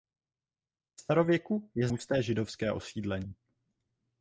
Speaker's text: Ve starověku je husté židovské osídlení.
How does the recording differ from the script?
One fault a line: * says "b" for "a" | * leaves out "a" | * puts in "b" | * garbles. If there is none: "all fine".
all fine